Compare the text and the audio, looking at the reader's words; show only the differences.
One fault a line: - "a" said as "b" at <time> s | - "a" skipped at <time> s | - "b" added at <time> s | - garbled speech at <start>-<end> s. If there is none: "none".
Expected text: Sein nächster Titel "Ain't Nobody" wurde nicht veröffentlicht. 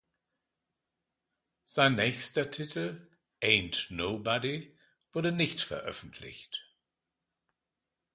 none